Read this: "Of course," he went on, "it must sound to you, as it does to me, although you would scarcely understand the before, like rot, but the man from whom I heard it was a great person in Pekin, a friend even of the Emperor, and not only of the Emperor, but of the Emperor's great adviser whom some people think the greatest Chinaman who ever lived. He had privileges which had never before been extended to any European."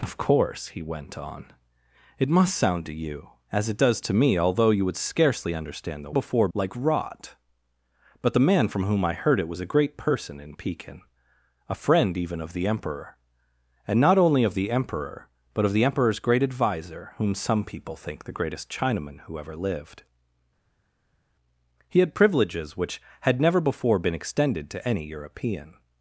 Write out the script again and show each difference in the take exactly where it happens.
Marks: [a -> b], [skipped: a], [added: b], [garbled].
"Of course," he went on, "it must sound to you, as it does to me, although you would scarcely understand the before, like rot, but the man from whom I heard it was a great person in Pekin, a friend even of the Emperor, and not only of the Emperor, but of the Emperor's great adviser whom some people think the greatest Chinaman who ever lived. He had privileges which had never before been extended to any European."